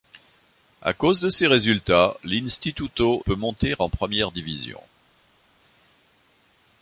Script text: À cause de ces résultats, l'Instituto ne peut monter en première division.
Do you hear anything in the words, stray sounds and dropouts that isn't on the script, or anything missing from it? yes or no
yes